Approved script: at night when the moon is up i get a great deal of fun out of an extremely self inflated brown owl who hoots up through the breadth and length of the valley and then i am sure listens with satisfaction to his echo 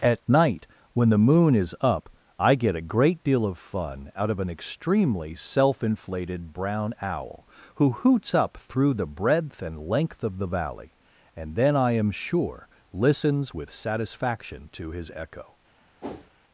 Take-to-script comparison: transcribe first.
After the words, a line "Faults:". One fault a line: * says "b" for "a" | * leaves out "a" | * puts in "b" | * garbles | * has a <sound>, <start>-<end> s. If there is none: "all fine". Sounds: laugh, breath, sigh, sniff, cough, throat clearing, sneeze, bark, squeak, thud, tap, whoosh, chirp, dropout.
at night when the moon is up i get a great deal of fun out of an extremely self inflated brown owl who hoots up through the breadth and length of the valley and then i am sure listens with satisfaction to his echo
Faults:
* has a whoosh, 16.0-16.3 s